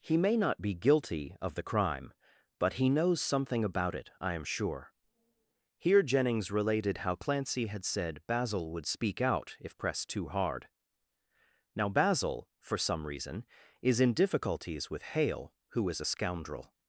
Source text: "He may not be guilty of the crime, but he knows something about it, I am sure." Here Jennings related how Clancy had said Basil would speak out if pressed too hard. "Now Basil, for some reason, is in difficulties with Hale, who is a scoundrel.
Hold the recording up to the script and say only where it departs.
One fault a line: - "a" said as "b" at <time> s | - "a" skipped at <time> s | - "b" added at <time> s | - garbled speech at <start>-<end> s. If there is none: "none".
none